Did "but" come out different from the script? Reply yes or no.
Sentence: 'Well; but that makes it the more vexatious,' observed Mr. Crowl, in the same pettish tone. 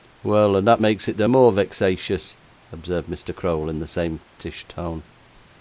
yes